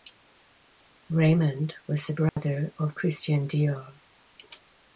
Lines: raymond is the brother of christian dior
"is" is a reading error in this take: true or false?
true